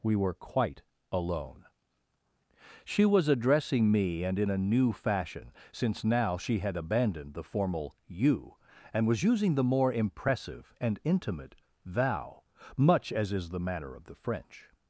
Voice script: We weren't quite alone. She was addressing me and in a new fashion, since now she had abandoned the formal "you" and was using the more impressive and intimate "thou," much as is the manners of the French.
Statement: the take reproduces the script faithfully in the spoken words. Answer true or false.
false